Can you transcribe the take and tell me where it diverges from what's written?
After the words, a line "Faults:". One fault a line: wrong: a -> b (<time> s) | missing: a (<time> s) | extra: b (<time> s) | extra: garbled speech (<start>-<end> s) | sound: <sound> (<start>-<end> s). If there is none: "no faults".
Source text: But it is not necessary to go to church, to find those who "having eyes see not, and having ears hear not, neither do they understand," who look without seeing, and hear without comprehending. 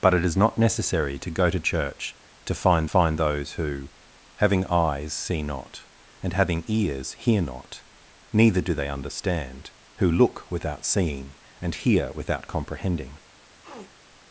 But it is not necessary to go to church, to find find those who "having eyes see not, and having ears hear not, neither do they understand," who look without seeing, and hear without comprehending.
Faults:
extra: find (2.8 s)
sound: sniff (13.6-13.9 s)